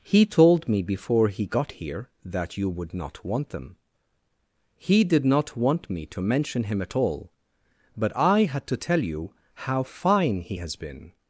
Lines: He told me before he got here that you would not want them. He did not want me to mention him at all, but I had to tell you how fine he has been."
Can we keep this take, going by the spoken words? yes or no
yes